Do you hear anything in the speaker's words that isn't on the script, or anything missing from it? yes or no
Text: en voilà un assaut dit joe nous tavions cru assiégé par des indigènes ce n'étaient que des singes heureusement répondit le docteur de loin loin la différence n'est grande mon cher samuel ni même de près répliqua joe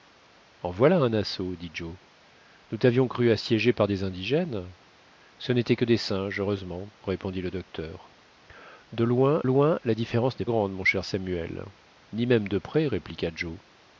no